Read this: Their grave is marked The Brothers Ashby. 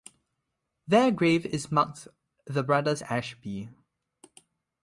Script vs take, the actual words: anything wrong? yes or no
no